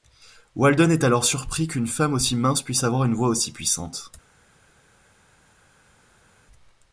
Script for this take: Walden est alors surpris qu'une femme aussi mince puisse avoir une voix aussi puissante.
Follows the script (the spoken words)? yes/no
yes